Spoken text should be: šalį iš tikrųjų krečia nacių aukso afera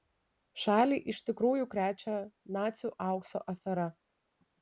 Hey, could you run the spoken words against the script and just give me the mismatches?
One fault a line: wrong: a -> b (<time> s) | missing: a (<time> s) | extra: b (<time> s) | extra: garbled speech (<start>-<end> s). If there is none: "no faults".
no faults